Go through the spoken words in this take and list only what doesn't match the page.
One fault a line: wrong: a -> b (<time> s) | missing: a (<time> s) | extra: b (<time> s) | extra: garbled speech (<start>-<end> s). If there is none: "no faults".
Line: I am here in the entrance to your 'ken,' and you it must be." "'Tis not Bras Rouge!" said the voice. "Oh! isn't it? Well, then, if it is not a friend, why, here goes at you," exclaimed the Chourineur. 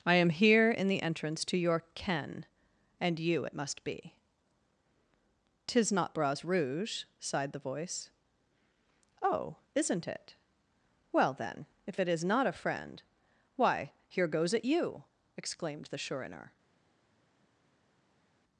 wrong: said -> sighed (7.2 s)